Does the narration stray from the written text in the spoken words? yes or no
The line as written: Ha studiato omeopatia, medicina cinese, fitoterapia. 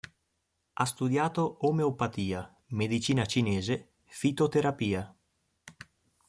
no